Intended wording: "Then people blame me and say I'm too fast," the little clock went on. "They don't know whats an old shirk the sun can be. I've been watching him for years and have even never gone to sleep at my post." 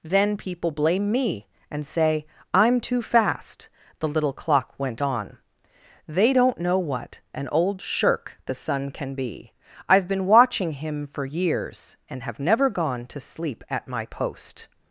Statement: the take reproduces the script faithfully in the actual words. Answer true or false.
false